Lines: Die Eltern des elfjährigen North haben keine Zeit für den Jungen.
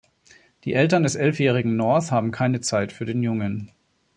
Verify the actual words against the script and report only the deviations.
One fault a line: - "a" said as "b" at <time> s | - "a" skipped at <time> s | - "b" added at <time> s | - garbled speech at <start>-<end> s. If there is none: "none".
none